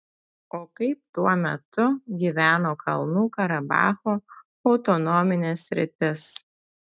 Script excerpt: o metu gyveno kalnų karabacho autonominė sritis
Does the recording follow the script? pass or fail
fail